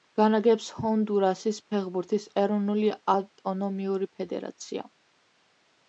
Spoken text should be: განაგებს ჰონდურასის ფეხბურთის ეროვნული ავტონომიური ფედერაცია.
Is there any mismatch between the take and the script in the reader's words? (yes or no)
no